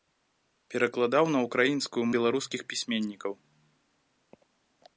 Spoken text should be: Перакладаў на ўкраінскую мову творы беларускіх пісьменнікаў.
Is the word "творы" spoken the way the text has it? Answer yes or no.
no